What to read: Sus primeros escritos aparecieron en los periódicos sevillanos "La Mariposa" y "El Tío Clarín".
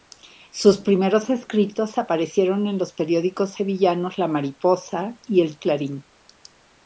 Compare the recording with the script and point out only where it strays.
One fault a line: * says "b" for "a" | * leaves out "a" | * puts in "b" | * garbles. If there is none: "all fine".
* leaves out "Tío"